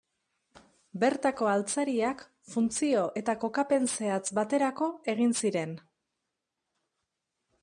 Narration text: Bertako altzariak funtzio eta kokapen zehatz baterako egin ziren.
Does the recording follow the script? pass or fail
pass